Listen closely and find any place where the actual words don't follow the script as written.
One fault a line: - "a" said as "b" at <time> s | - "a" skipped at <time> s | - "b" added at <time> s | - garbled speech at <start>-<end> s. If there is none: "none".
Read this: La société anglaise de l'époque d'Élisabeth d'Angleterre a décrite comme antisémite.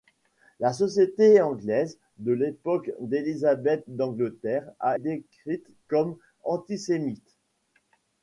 none